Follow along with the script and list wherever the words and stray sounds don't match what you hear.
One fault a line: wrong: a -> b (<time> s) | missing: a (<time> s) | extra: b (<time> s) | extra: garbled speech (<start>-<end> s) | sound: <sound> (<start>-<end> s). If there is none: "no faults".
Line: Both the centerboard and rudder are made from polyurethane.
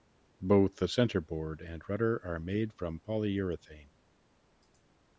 no faults